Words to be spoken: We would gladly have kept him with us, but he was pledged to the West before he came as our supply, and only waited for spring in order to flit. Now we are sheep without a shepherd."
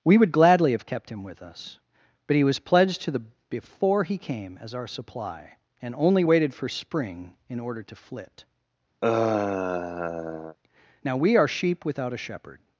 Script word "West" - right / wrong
wrong